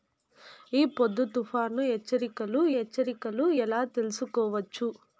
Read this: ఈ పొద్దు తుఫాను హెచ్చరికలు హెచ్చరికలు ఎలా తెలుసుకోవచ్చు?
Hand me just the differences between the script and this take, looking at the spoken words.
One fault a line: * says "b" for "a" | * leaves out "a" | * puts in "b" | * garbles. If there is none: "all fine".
all fine